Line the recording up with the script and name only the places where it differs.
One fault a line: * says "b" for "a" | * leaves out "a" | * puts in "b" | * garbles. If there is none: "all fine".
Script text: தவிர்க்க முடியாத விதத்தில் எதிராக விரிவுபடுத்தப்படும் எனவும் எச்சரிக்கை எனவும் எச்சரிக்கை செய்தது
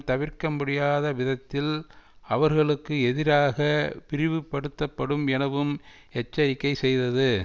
* puts in "அவர்களுக்கு"
* leaves out "எனவும் எச்சரிக்கை"